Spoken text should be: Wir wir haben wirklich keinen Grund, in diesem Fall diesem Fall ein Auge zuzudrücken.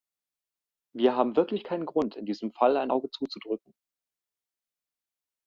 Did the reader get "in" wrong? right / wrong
right